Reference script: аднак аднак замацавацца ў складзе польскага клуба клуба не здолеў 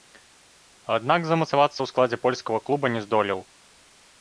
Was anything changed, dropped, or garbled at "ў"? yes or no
no